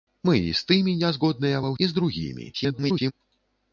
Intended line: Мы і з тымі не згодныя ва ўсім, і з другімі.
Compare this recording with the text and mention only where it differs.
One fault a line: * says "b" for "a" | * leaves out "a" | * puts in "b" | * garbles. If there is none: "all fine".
* leaves out "ўсім"
* garbles